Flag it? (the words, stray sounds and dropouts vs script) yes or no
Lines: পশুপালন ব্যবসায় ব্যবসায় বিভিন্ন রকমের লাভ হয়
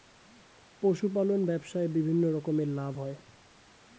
yes